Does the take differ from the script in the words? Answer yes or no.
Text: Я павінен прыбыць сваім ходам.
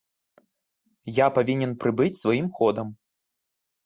no